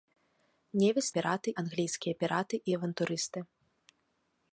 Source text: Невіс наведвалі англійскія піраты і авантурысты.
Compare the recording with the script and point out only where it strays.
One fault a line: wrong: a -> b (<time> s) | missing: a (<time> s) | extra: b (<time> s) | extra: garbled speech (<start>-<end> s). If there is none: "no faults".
wrong: наведвалі -> піраты (1.2 s)